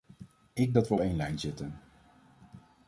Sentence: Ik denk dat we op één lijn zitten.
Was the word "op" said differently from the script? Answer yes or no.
yes